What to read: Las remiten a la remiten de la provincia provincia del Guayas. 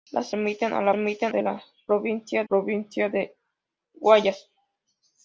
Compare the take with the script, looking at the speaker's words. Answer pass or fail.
pass